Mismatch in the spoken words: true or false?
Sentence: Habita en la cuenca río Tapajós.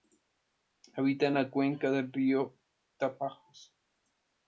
true